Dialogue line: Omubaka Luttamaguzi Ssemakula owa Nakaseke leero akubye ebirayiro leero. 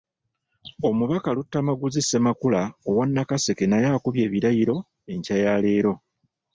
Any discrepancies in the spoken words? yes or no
yes